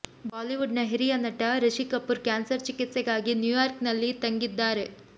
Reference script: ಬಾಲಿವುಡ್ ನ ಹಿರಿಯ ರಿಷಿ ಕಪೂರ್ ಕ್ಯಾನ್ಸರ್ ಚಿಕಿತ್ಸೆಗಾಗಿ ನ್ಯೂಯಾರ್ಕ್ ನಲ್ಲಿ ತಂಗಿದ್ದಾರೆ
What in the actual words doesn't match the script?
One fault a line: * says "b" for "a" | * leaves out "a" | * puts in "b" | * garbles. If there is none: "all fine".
* puts in "ನಟ"